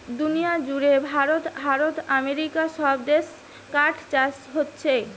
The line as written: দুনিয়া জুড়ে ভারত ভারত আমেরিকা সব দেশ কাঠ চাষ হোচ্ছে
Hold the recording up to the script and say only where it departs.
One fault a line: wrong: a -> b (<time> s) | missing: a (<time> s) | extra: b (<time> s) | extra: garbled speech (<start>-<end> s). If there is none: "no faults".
no faults